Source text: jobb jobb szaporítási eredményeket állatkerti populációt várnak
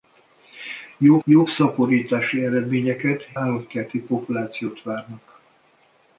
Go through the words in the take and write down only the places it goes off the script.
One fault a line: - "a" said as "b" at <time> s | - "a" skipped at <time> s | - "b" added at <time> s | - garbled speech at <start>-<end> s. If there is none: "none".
none